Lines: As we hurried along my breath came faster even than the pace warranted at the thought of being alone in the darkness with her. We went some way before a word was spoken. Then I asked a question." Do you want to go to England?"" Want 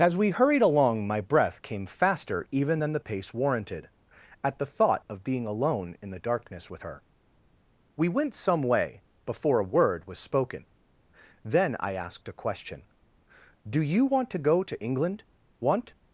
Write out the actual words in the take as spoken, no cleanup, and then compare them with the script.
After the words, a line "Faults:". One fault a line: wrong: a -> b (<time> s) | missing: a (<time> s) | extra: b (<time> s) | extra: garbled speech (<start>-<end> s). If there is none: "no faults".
As we hurried along my breath came faster even than the pace warranted at the thought of being alone in the darkness with her. We went some way before a word was spoken. Then I asked a question." Do you want to go to England?"" Want
Faults:
no faults